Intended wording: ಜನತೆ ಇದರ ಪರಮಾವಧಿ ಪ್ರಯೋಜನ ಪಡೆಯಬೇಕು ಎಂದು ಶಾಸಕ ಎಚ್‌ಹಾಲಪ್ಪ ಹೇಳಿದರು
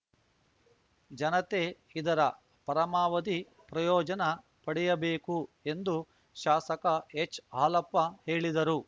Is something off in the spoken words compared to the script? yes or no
no